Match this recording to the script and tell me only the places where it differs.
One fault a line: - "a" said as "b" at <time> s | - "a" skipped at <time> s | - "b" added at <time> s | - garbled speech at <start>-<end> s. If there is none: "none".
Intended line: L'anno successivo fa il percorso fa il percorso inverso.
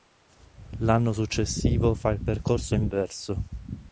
- "fa il percorso" skipped at 2.7 s